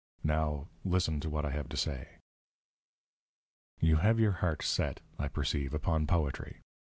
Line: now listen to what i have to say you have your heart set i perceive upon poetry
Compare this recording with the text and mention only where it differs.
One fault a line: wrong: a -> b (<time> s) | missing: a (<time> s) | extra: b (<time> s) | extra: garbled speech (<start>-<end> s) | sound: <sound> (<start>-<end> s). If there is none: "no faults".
no faults